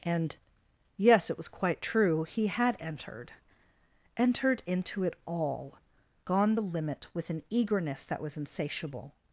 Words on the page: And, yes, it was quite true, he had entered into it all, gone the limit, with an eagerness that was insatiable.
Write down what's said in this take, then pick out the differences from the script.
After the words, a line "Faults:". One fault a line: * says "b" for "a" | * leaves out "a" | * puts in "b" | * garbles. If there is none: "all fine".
And, yes, it was quite true, he had entered entered into it all, gone the limit, with an eagerness that was insatiable.
Faults:
* puts in "entered"